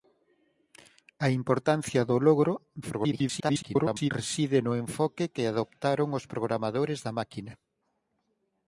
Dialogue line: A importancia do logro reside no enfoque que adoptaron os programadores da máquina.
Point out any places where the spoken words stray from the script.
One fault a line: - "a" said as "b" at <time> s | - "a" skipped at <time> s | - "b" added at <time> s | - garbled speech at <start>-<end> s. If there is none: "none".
- garbled speech at 2.8-4.1 s